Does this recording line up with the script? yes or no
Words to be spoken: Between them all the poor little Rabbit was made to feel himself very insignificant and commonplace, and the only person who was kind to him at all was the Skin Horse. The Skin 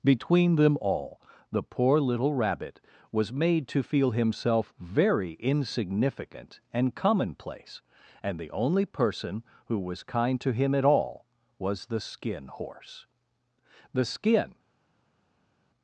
yes